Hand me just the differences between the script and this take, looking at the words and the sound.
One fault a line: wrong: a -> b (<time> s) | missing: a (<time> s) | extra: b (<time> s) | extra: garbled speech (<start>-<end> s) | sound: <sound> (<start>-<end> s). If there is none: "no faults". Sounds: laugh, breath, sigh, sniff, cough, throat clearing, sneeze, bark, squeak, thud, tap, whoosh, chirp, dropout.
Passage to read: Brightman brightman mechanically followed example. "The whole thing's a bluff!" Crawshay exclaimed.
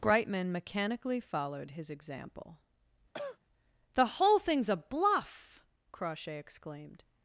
missing: brightman (0.5 s)
extra: his (1.7 s)
sound: cough (3.1-3.4 s)